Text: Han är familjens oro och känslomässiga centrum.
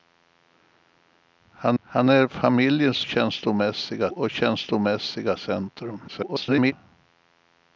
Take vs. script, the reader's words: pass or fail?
fail